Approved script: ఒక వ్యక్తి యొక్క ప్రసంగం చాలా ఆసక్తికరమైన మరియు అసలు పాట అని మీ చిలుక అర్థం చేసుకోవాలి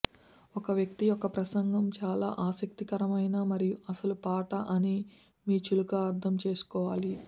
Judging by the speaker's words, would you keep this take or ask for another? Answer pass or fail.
pass